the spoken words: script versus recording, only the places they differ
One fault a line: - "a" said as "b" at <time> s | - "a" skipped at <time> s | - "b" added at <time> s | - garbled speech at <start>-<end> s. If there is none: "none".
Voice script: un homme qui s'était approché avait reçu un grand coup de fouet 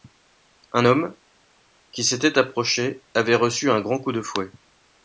none